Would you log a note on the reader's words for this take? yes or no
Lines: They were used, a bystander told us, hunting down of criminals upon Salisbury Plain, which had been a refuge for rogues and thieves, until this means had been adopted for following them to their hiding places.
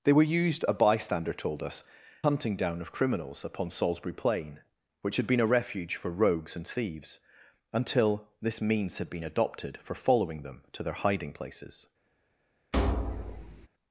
no